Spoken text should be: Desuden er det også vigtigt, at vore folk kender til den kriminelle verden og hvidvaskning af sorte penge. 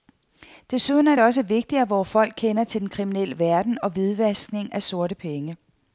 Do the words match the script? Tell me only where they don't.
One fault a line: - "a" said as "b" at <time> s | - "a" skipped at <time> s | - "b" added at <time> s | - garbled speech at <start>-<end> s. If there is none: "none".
none